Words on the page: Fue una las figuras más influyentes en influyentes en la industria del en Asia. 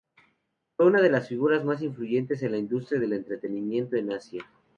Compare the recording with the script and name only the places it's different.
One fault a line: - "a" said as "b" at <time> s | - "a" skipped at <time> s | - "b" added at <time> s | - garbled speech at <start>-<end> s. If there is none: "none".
- "de" added at 1.0 s
- "influyentes en" skipped at 2.5 s
- "entretenimiento" added at 3.1 s